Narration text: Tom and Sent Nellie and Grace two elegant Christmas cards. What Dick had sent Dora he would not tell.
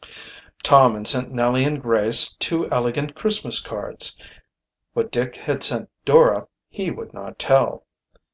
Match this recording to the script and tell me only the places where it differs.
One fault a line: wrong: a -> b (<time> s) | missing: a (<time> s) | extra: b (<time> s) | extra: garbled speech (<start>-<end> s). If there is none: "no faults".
no faults